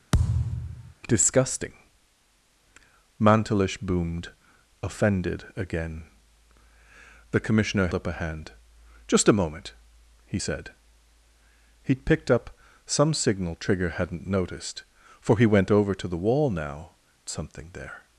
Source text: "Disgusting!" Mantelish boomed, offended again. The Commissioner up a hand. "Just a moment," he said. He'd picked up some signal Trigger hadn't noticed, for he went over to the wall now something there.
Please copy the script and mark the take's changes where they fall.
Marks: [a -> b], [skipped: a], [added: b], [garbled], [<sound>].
[thud] "Disgusting!" Mantelish boomed, offended again. The Commissioner up a hand. "Just a moment," he said. He'd picked up some signal Trigger hadn't noticed, for he went over to the wall now something there.